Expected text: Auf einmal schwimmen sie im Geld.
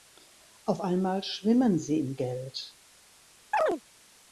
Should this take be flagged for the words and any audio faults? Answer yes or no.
yes